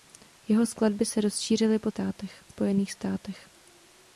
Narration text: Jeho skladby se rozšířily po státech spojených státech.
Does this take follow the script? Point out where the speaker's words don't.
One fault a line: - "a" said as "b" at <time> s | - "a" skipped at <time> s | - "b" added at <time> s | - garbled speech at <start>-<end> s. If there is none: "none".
none